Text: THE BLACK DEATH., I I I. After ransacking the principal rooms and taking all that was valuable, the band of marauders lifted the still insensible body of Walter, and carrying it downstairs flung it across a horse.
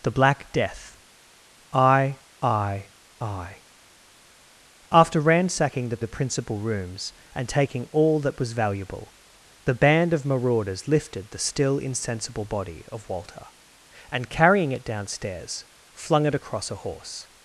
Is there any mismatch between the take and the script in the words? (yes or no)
yes